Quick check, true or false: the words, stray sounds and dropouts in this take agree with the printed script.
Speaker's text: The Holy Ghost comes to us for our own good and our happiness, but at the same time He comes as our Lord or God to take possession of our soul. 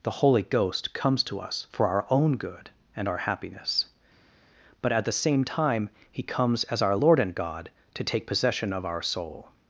false